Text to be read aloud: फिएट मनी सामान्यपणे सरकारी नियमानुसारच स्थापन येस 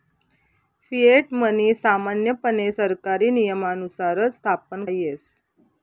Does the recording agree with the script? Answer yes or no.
yes